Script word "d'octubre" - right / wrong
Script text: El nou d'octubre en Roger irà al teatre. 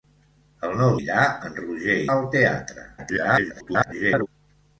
wrong